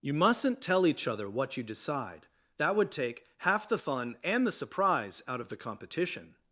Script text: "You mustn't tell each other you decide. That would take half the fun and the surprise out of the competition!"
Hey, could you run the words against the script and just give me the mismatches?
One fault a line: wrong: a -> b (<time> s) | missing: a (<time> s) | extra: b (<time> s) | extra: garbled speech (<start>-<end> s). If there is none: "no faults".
extra: what (1.3 s)